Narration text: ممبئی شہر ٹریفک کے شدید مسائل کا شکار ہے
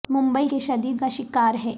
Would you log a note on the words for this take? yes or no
yes